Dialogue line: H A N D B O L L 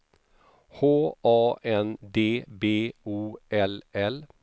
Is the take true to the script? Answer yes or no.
yes